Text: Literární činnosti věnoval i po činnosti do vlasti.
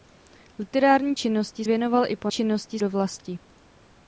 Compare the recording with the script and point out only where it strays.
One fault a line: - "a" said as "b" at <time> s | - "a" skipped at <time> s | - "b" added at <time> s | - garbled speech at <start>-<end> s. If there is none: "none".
none